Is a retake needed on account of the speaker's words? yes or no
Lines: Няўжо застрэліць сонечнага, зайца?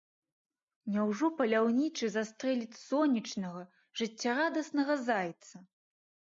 yes